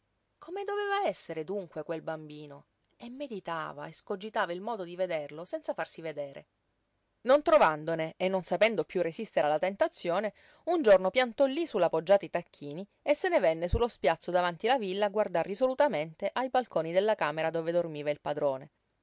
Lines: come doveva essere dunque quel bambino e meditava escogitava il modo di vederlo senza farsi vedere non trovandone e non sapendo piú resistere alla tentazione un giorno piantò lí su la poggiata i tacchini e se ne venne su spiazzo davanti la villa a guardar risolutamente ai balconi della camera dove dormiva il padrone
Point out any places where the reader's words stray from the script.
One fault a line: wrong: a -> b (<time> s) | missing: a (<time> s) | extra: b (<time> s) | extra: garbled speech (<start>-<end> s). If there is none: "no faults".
extra: lo (13.8 s)